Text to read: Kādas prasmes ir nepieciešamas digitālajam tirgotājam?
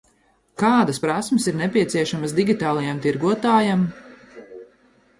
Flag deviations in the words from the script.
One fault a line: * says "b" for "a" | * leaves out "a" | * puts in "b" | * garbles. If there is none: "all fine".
all fine